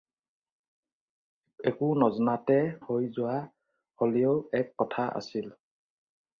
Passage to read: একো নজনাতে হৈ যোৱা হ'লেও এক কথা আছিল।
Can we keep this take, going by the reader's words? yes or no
yes